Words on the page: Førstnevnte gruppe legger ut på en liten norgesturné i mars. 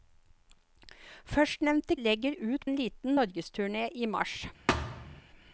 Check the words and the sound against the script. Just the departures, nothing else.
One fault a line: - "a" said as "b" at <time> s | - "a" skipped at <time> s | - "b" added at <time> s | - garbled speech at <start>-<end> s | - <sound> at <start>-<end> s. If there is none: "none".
- "gruppe" skipped at 1.9 s
- "på" skipped at 2.7 s
- thud at 4.7-5.2 s